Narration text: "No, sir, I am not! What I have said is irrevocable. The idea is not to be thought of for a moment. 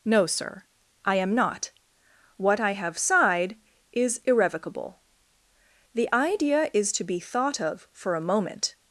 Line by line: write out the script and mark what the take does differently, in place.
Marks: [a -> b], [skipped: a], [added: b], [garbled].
"No, sir, I am not! What I have [said -> sighed] is irrevocable. The idea is [skipped: not] to be thought of for a moment.